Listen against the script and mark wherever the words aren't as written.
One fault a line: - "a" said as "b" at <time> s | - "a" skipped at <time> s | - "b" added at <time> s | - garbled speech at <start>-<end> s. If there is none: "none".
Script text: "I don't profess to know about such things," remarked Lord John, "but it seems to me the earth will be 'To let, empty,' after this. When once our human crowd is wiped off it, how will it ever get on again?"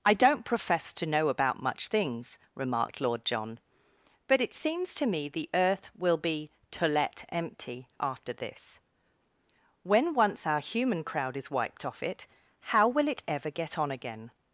- "such" said as "much" at 1.6 s